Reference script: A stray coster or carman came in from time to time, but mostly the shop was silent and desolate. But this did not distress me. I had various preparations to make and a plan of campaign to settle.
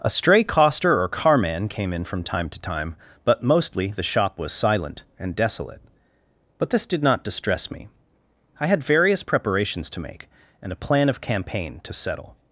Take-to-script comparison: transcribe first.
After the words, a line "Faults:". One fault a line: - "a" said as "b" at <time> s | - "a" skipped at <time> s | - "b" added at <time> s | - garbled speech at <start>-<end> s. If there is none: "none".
A stray coster or carman came in from time to time, but mostly the shop was silent and desolate. But this did not distress me. I had various preparations to make and a plan of campaign to settle.
Faults:
none